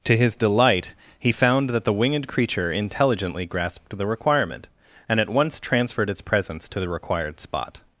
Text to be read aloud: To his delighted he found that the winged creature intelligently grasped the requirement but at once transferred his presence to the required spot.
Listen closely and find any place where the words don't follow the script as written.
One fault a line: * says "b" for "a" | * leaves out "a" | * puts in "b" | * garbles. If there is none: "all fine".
* says "delight" for "delighted"
* says "and" for "but"
* says "its" for "his"